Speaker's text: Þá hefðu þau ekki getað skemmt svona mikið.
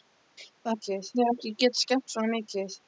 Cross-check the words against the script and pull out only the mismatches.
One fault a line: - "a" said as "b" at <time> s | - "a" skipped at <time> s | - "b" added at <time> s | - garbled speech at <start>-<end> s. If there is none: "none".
- "hefðu" said as "mikið" at 0.7 s